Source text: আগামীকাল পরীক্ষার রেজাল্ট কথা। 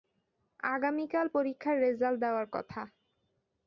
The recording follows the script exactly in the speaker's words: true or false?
false